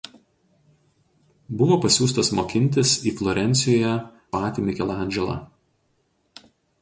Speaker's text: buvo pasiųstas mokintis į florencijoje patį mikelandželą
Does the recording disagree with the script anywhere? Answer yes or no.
no